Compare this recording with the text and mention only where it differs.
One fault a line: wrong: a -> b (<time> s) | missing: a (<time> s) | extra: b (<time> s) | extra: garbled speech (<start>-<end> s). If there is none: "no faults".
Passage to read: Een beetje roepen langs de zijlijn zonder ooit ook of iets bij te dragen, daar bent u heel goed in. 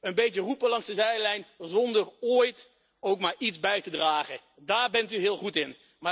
wrong: of -> maar (3.2 s)